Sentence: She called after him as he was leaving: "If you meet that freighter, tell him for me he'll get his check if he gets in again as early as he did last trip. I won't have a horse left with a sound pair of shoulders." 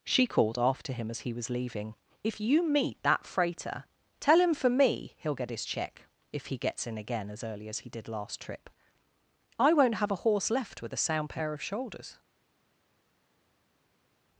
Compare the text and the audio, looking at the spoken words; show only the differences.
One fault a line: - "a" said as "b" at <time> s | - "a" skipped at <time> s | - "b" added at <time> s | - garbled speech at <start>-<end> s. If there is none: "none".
none